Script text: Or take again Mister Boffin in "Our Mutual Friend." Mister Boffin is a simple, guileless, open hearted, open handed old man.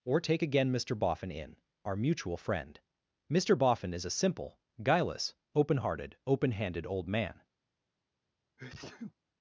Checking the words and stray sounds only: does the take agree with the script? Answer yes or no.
no